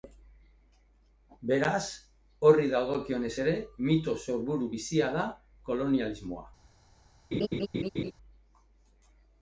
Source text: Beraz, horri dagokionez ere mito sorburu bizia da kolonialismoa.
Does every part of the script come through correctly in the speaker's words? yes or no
yes